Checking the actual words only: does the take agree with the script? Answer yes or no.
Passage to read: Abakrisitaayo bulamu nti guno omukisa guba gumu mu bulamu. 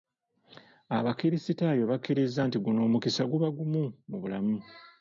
no